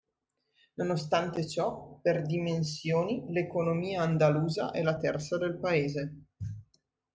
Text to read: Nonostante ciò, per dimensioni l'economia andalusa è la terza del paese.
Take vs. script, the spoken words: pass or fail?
pass